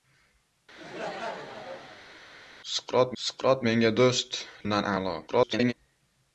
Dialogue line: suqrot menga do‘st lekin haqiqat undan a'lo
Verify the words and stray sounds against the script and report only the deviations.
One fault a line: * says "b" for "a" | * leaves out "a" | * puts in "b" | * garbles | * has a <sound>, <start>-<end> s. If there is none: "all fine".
* has a laugh, 0.8-2.2 s
* puts in "suqrot"
* leaves out "lekin haqiqat"
* garbles